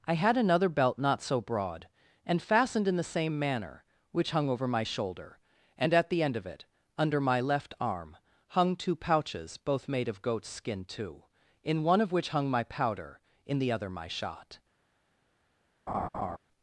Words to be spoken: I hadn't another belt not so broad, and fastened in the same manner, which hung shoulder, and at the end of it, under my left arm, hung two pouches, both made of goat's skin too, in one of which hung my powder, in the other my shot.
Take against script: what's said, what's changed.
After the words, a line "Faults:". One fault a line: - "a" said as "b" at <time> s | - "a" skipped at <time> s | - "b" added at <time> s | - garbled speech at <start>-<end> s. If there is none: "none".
I had another belt not so broad, and fastened in the same manner, which hung over my shoulder, and at the end of it, under my left arm, hung two pouches, both made of goat's skin too, in one of which hung my powder, in the other my shot.
Faults:
- "hadn't" said as "had" at 0.1 s
- "over my" added at 4.5 s